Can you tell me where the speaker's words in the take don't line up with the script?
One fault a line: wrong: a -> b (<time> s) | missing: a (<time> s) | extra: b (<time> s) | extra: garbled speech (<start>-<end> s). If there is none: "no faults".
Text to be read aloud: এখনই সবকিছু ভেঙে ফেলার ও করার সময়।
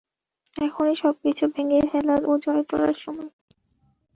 extra: জয় (2.4 s)